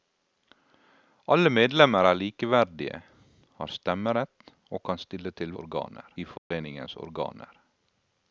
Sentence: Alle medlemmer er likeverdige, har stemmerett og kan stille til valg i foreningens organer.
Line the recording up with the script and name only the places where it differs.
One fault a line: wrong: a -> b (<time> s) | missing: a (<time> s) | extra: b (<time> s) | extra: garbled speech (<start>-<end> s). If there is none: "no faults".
wrong: valg -> organer (5.6 s)